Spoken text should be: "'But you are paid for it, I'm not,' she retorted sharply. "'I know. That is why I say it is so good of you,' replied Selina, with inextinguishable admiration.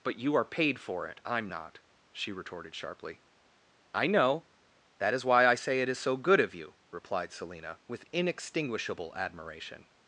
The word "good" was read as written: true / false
true